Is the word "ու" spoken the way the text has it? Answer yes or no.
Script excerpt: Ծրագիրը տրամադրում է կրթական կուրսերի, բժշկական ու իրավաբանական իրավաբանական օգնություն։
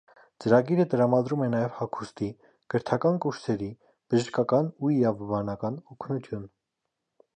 yes